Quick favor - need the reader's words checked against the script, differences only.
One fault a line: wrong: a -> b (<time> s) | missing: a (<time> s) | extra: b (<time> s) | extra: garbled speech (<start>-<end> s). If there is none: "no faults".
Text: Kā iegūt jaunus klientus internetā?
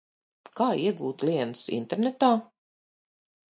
missing: jaunus (1.2 s)